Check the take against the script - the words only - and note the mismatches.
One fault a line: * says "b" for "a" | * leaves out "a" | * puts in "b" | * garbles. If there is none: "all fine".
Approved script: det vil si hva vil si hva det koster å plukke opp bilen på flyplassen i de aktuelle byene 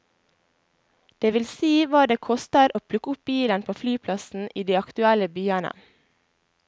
* leaves out "vil si hva"